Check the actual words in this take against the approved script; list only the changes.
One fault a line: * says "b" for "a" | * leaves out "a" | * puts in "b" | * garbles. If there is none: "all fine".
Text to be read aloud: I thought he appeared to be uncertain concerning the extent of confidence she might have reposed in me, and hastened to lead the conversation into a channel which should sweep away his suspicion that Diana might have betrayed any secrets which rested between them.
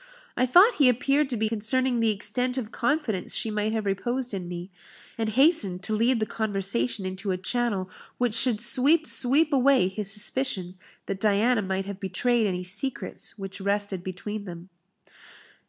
* leaves out "uncertain"
* puts in "sweep"